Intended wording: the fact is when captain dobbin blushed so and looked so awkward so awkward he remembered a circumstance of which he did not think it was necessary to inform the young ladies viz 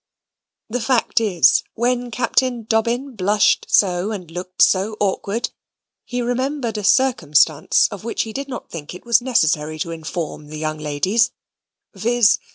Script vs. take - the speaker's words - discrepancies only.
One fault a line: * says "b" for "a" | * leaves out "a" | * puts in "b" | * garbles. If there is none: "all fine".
* leaves out "so awkward"